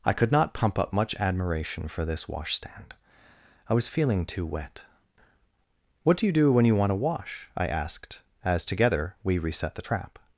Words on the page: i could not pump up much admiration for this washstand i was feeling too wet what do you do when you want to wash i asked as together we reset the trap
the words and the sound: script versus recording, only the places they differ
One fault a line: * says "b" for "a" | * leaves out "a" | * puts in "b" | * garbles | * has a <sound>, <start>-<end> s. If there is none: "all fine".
all fine